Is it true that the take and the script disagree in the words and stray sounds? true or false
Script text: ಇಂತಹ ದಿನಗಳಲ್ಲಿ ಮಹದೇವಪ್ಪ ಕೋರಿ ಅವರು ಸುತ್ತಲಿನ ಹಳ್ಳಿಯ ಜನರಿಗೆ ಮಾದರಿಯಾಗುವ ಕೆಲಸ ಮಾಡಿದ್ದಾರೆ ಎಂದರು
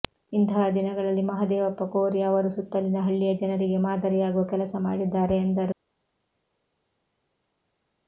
false